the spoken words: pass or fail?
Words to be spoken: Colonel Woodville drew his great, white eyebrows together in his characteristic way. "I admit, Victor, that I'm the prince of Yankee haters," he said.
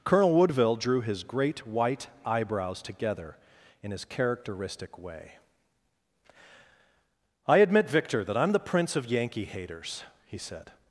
pass